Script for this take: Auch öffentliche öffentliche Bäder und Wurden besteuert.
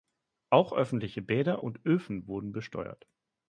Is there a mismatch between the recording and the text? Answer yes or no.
yes